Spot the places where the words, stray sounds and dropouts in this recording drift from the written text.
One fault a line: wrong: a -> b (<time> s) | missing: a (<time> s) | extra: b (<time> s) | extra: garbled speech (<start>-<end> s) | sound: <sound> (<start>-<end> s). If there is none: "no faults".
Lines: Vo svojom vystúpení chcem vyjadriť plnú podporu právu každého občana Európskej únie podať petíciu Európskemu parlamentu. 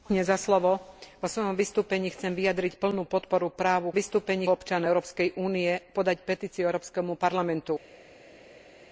wrong: každého -> vystúpení (3.9 s)